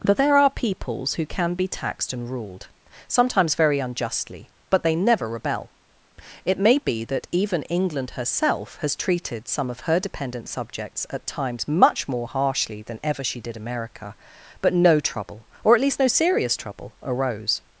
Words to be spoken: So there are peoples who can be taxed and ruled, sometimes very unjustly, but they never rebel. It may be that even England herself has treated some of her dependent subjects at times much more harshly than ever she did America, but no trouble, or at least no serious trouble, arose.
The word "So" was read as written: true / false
false